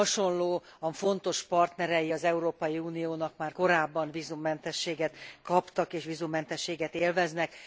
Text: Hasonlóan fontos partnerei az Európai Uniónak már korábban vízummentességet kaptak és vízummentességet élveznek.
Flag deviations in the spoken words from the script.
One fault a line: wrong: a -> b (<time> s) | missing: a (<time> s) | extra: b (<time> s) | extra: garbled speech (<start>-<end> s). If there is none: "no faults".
no faults